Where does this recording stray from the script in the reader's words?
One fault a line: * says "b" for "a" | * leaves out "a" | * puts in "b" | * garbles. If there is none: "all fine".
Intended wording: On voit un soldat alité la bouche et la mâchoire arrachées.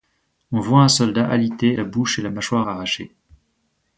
all fine